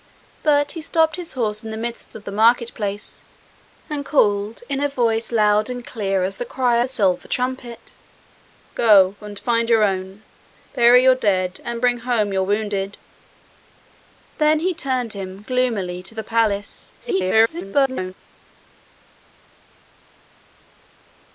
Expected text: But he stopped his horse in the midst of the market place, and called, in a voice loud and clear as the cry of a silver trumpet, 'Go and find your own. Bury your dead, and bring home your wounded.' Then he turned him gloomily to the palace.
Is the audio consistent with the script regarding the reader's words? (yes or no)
no